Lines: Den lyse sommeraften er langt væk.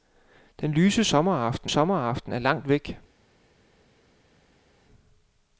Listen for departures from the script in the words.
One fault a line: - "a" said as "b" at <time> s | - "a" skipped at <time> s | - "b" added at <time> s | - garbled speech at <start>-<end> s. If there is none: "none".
- "sommeraften" added at 1.7 s